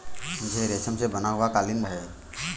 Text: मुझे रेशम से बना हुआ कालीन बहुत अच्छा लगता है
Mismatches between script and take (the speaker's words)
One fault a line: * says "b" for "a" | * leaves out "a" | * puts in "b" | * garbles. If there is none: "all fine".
* leaves out "बहुत अच्छा लगता"